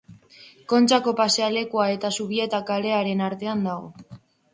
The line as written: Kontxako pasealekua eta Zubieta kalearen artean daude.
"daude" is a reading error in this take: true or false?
true